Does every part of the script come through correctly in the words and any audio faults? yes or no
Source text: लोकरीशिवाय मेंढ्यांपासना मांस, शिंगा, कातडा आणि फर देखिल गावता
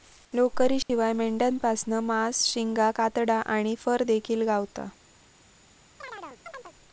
no